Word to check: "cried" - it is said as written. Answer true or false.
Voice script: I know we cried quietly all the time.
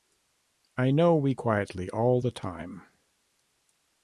false